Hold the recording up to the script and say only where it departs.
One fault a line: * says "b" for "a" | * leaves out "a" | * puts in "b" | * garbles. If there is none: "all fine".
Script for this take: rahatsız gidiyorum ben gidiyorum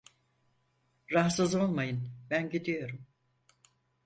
* says "olmayın" for "gidiyorum"